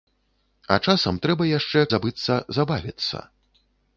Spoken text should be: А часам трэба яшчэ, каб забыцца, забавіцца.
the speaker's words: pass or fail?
fail